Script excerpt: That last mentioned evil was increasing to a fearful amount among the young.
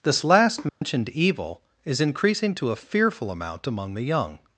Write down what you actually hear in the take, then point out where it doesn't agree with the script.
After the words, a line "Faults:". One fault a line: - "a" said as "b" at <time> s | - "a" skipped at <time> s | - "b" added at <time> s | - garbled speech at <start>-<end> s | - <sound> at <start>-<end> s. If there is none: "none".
This last mentioned evil is increasing to a fearful amount among the young.
Faults:
- "That" said as "This" at 0.0 s
- dropout at 0.7-0.8 s
- "was" said as "is" at 1.8 s